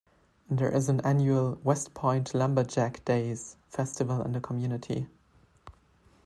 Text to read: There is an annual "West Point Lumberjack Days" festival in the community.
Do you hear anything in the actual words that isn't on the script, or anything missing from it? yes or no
no